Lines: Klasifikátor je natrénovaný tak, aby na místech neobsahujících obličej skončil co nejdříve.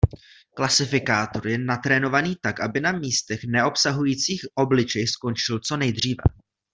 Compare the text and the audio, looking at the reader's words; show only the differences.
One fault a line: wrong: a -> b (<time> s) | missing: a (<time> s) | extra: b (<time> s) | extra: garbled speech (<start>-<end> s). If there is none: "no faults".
no faults